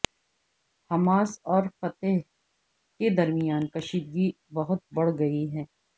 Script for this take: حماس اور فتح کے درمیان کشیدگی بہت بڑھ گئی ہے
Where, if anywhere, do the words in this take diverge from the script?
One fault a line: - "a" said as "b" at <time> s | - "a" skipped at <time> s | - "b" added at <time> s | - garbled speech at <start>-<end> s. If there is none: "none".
none